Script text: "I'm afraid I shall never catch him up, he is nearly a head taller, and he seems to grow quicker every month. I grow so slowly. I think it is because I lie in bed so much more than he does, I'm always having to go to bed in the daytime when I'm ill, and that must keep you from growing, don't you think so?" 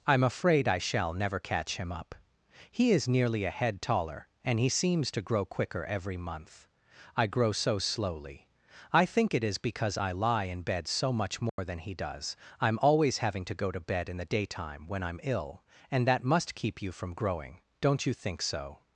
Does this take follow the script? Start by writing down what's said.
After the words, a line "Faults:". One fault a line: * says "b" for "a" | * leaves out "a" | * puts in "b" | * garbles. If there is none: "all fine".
"I'm afraid I shall never catch him up, he is nearly a head taller, and he seems to grow quicker every month. I grow so slowly. I think it is because I lie in bed so much more than he does, I'm always having to go to bed in the daytime when I'm ill, and that must keep you from growing, don't you think so?"
Faults:
all fine